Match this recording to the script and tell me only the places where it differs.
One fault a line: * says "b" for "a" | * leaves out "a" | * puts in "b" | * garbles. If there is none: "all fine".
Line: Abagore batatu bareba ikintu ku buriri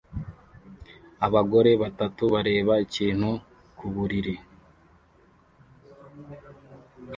all fine